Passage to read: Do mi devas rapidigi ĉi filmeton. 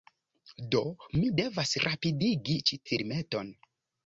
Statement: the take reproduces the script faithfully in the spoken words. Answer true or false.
true